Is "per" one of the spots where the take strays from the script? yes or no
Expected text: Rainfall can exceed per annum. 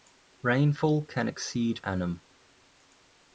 yes